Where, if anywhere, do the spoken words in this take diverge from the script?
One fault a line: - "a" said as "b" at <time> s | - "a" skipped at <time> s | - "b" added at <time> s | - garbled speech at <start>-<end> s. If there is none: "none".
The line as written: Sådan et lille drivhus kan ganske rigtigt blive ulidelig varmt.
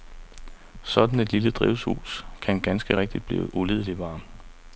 none